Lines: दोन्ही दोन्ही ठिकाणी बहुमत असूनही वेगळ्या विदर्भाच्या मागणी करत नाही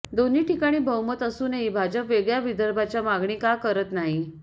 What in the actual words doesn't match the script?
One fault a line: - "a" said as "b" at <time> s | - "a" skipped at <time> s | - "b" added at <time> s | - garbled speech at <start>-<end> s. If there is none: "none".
- "दोन्ही" skipped at 0.4 s
- "भाजप" added at 1.7 s
- "का" added at 3.4 s